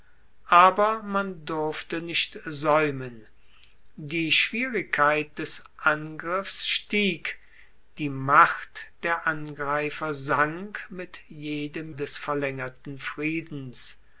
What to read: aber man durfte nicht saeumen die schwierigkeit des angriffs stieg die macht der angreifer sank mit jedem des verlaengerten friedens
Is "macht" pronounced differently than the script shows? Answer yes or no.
no